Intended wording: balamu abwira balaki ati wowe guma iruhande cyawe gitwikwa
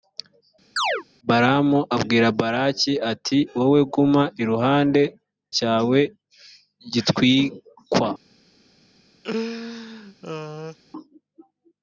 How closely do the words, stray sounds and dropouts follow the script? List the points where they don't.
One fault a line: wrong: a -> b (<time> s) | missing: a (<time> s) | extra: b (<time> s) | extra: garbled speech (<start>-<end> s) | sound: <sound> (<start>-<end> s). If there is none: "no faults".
sound: chirp (0.8-1.0 s)
sound: laugh (9.2-10.8 s)